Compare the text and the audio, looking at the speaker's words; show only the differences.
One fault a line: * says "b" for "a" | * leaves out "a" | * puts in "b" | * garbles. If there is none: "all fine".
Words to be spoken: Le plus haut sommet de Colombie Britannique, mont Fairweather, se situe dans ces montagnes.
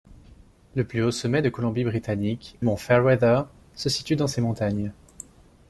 all fine